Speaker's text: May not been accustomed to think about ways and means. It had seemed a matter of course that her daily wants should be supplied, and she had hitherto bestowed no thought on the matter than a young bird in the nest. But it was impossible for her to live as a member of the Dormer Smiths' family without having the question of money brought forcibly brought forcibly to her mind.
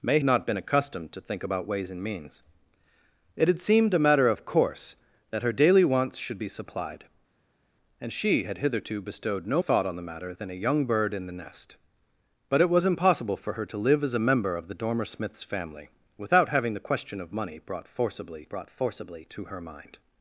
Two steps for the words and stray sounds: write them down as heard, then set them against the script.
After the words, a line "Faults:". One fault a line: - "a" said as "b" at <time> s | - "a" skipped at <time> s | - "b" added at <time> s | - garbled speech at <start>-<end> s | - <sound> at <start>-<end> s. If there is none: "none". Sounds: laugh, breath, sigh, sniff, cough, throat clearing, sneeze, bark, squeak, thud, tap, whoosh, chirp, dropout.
May not been accustomed to think about ways and means. It had seemed a matter of course that her daily wants should be supplied, and she had hitherto bestowed no thought on the matter than a young bird in the nest. But it was impossible for her to live as a member of the Dormer Smiths' family without having the question of money brought forcibly brought forcibly to her mind.
Faults:
none